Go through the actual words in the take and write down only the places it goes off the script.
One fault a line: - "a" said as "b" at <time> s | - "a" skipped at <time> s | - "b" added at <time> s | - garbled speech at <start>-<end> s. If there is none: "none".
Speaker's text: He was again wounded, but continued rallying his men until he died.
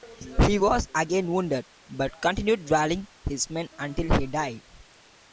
none